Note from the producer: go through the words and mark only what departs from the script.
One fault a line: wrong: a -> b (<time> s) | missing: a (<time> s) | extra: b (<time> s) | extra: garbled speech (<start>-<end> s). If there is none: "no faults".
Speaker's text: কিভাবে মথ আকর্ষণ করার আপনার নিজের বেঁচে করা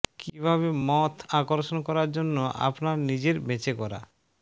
extra: জন্য (2.2 s)